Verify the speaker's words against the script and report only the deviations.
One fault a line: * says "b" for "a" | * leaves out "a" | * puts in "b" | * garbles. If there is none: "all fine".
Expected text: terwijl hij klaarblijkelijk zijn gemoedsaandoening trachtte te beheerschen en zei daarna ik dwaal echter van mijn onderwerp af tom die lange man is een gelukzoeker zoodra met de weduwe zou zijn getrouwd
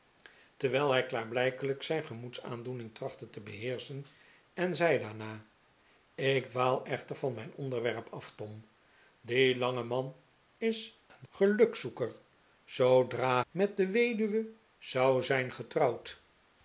all fine